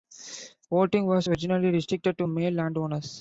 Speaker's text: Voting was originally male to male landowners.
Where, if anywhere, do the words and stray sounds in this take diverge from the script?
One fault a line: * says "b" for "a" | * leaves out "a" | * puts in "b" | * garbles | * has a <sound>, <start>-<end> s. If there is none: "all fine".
* says "restricted" for "male"